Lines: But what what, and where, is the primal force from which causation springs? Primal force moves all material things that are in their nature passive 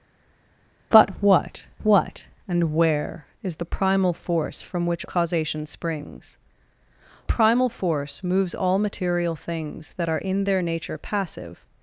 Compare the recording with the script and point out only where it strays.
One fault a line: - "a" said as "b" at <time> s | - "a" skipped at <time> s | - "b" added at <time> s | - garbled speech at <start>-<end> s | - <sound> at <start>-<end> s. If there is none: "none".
none